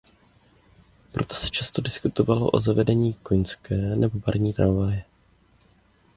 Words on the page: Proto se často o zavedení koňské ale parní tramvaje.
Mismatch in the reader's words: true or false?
true